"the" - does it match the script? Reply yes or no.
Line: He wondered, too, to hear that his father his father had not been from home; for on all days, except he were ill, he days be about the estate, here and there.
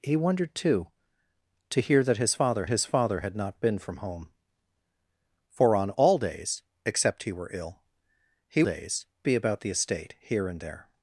yes